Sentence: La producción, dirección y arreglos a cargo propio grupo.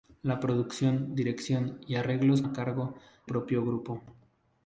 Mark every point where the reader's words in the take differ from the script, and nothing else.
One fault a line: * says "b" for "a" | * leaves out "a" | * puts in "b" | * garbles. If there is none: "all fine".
all fine